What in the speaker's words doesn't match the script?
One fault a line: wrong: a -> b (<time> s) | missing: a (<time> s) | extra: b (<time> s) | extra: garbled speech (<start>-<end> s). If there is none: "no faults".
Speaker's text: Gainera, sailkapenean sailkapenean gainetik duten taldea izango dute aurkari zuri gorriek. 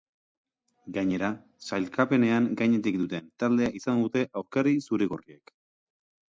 missing: sailkapenean (2.5 s)